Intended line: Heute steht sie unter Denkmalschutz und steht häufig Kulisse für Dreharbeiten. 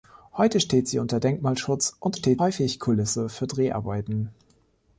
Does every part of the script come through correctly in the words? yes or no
yes